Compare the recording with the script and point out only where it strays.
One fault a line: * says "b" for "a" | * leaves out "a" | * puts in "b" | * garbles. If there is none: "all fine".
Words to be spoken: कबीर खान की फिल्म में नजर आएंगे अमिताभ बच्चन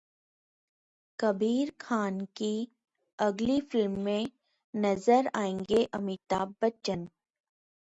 * puts in "अगली"